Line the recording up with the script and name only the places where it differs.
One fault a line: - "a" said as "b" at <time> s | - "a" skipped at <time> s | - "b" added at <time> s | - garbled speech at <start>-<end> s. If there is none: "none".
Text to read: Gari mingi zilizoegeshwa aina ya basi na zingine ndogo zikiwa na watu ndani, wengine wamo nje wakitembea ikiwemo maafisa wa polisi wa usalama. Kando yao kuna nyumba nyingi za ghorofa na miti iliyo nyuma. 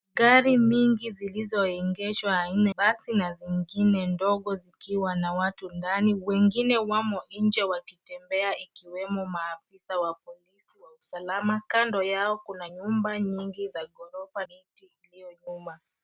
- "ya" skipped at 2.7 s
- "na" skipped at 14.5 s